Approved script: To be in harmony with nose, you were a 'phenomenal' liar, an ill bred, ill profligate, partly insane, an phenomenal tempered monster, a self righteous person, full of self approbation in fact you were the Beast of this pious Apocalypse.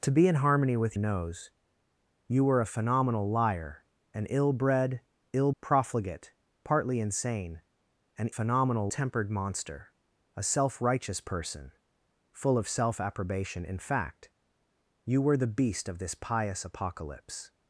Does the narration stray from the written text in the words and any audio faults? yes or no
no